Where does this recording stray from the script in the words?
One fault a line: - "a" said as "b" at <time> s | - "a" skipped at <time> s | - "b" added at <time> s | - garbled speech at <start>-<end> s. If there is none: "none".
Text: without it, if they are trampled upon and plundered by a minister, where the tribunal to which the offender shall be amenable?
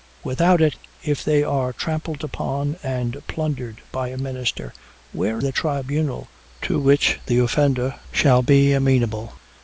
none